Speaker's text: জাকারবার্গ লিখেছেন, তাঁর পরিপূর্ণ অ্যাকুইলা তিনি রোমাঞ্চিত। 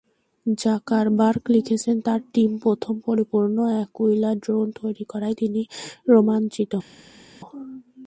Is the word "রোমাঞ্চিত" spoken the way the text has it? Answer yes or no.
yes